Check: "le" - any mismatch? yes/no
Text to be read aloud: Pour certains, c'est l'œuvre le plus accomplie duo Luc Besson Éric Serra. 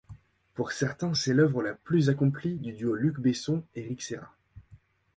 yes